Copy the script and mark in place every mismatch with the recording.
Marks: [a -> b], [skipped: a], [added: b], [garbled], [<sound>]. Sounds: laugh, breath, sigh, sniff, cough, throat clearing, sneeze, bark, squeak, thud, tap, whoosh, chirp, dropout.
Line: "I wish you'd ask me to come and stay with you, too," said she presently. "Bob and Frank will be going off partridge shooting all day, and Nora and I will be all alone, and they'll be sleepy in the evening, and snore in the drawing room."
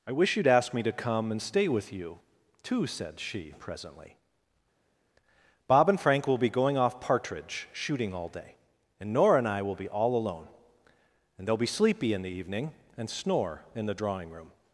"I wish you'd ask me to come and stay with you, too," said she presently. "Bob and Frank will be going off partridge shooting all day, and Nora and I will be all alone, and they'll be sleepy in the evening, and snore in the drawing room."